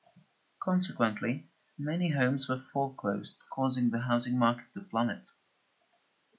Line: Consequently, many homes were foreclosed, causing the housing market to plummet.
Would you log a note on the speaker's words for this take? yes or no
no